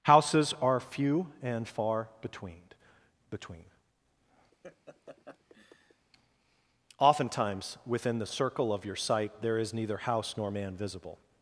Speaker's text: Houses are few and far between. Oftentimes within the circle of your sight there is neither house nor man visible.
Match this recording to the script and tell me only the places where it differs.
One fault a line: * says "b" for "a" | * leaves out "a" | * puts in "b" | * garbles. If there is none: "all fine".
* puts in "between"